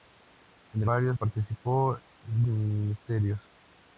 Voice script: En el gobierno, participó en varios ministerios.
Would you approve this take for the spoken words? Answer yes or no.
no